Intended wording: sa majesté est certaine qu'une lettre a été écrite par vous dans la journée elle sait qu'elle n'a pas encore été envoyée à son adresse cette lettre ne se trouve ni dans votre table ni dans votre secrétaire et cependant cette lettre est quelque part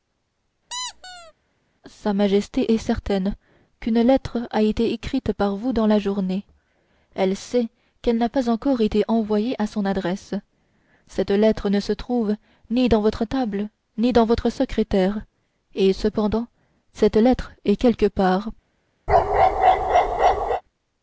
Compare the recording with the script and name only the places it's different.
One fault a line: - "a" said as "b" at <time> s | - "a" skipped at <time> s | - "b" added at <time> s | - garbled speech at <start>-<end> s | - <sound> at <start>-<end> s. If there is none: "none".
- squeak at 0.7-1.3 s
- bark at 19.1-20.6 s